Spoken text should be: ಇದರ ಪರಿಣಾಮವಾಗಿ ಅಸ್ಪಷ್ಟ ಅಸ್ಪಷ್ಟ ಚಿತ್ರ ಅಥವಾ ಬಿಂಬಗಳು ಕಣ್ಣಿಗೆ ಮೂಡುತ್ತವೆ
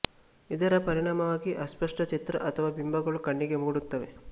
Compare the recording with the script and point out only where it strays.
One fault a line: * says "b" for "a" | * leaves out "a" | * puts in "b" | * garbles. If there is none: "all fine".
* leaves out "ಅಸ್ಪಷ್ಟ"